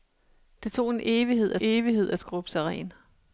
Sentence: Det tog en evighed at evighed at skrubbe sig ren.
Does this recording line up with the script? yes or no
yes